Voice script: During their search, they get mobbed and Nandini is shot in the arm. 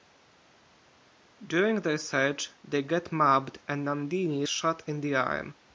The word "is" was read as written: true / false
false